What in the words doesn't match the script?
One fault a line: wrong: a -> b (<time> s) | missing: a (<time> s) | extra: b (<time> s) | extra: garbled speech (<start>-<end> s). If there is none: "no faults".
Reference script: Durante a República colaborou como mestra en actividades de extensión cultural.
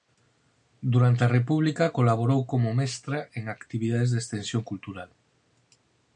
no faults